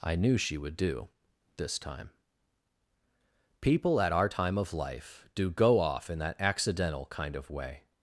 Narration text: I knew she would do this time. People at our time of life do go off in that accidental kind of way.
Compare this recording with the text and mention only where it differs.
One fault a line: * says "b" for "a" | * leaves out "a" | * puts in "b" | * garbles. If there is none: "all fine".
all fine